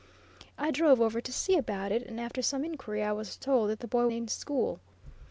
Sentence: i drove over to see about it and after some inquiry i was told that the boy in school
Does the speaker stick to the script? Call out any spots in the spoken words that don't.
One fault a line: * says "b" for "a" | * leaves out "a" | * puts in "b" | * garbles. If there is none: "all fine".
all fine